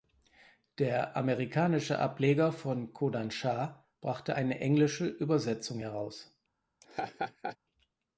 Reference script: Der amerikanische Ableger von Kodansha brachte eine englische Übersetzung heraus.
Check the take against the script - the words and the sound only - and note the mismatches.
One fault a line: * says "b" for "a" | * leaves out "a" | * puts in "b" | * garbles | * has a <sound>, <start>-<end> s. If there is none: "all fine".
* has a laugh, 6.8-7.6 s